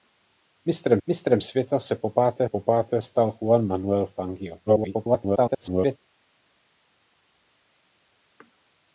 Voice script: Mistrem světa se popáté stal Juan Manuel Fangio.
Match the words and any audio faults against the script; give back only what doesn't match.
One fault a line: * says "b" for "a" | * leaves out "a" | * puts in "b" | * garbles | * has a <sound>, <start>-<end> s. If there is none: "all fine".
* puts in "mistrem"
* puts in "popáté"
* garbles